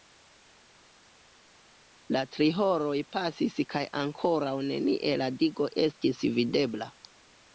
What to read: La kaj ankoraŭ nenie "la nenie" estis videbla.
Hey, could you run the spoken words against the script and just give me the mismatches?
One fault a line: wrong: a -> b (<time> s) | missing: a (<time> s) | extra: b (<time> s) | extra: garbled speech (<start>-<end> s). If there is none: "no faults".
extra: tri horoj pasis (2.4 s)
wrong: nenie -> digo (5.4 s)